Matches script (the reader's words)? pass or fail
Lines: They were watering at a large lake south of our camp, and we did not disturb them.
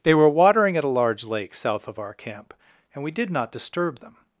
pass